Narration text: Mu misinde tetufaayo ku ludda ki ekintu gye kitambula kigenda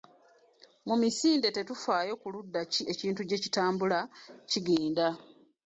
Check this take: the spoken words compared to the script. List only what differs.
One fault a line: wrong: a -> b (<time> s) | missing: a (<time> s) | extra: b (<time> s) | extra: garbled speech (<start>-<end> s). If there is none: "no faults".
no faults